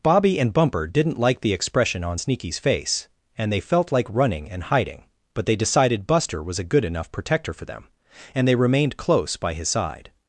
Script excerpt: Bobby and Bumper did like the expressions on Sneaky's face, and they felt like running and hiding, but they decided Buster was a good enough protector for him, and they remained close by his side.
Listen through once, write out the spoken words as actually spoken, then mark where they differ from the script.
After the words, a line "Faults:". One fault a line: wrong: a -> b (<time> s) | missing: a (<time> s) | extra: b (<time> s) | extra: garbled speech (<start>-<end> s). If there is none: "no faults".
Bobby and Bumper didn't like the expression on Sneaky's face, and they felt like running and hiding, but they decided Buster was a good enough protector for them, and they remained close by his side.
Faults:
wrong: did -> didn't (0.9 s)
wrong: expressions -> expression (1.5 s)
wrong: him -> them (7.6 s)